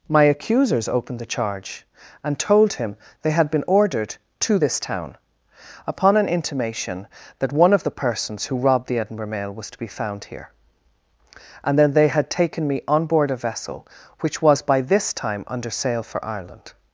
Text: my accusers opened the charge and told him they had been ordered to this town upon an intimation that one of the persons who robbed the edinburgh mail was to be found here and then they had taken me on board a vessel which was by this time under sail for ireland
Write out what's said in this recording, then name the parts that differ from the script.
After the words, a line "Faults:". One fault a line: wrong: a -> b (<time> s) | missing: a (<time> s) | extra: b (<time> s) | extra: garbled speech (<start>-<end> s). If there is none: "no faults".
my accusers opened the charge and told him they had been ordered to this town upon an intimation that one of the persons who robbed the edinburgh mail was to be found here and then they had taken me on board a vessel which was by this time under sail for ireland
Faults:
no faults